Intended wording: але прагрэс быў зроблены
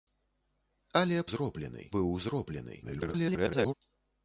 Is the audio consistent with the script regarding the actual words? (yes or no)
no